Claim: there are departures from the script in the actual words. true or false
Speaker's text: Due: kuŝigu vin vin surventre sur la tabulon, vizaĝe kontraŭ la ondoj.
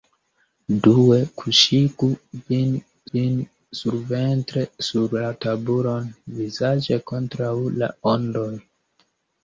false